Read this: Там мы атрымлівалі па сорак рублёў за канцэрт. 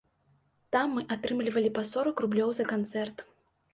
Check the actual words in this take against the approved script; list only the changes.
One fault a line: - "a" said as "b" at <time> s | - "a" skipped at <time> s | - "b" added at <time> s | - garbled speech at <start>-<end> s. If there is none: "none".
none